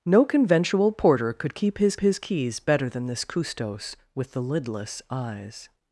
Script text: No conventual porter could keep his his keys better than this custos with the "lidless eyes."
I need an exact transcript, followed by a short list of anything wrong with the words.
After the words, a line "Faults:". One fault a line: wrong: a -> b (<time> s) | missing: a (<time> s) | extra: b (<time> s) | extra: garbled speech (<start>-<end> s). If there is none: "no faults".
No conventual porter could keep his his keys better than this custos with the "lidless eyes."
Faults:
no faults